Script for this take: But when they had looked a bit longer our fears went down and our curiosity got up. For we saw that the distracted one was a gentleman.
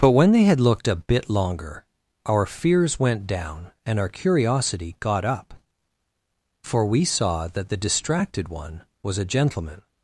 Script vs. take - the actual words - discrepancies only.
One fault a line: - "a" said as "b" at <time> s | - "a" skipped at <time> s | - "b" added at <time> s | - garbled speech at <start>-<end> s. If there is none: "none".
none